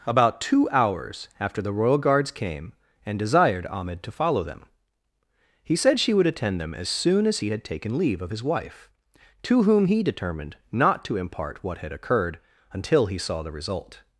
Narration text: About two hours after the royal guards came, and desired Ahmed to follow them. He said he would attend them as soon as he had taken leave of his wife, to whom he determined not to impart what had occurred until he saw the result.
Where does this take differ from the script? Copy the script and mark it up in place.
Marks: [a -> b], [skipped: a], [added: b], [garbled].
About two hours after the royal guards came, and desired Ahmed to follow them. He said [he -> she] would attend them as soon as he had taken leave of his wife, to whom he determined not to impart what had occurred until he saw the result.